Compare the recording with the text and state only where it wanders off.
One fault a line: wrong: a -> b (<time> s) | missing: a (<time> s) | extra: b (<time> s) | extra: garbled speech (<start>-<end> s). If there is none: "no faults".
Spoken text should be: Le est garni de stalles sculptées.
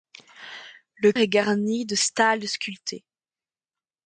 no faults